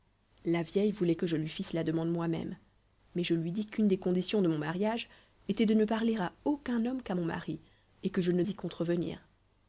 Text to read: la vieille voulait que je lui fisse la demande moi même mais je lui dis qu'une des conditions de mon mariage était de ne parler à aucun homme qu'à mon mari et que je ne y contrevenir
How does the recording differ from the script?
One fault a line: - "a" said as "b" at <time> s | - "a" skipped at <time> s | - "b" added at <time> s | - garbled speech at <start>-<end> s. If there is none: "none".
none